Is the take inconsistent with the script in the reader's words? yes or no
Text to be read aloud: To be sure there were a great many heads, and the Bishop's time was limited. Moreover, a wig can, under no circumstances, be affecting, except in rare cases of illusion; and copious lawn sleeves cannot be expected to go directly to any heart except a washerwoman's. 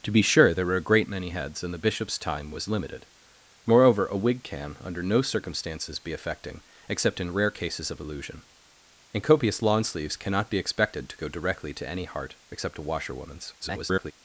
yes